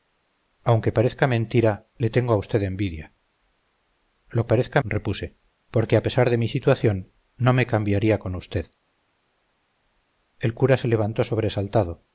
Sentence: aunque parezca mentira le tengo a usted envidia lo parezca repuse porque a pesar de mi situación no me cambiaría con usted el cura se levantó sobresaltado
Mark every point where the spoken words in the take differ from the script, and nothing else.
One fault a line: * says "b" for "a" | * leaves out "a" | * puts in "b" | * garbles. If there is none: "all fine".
all fine